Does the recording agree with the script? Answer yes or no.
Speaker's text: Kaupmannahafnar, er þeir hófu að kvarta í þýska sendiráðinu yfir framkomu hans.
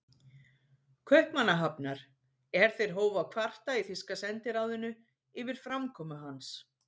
yes